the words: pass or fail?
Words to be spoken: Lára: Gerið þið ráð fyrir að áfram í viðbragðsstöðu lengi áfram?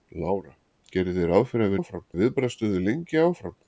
pass